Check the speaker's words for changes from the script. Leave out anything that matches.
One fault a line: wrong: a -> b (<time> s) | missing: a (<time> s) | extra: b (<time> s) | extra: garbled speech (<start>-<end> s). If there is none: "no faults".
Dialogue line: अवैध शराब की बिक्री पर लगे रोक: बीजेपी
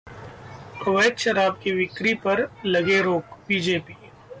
no faults